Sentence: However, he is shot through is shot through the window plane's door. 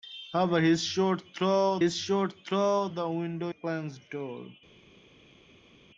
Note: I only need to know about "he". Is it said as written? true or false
true